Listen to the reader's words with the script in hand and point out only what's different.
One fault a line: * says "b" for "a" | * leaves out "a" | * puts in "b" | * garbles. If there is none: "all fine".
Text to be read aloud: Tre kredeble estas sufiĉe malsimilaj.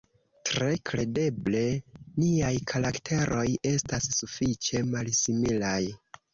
* puts in "niaj karakteroj"